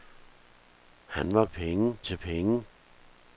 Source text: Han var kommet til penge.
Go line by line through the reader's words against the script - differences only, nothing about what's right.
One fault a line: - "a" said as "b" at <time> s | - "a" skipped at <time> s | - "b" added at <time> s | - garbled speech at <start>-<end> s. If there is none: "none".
- "kommet" said as "penge" at 1.5 s